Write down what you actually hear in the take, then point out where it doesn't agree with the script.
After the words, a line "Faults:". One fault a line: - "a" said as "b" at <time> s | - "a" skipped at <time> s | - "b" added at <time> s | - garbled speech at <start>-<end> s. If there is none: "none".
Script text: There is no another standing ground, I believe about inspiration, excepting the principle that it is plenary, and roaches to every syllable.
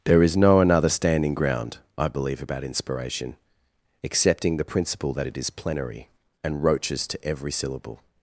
There is no another standing ground, I believe about inspiration, excepting the principle that it is plenary, and roaches to every syllable.
Faults:
none